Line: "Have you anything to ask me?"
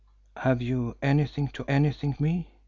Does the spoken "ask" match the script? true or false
false